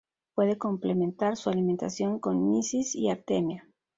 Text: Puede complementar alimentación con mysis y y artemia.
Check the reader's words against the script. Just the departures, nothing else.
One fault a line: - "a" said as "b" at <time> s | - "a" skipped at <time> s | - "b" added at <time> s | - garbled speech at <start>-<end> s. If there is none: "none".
- "su" added at 1.4 s
- "y" skipped at 3.1 s